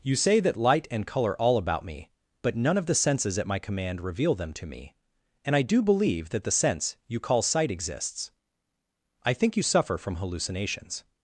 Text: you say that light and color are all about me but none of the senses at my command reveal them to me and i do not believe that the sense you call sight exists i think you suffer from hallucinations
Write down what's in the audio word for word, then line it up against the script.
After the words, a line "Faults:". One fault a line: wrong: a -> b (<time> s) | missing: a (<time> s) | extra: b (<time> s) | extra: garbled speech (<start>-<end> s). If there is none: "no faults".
you say that light and color all about me but none of the senses at my command reveal them to me and i do believe that the sense you call sight exists i think you suffer from hallucinations
Faults:
missing: are (1.4 s)
missing: not (5.8 s)